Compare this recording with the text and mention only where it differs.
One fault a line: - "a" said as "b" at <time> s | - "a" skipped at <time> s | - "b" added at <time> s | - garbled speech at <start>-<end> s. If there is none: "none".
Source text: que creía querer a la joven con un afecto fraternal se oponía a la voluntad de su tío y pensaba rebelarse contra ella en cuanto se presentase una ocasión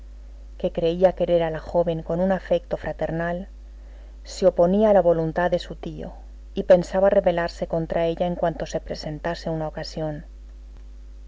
none